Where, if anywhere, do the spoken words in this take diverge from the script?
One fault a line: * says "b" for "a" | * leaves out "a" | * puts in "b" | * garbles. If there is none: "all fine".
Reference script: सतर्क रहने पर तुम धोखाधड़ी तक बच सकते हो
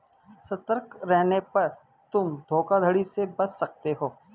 * says "से" for "तक"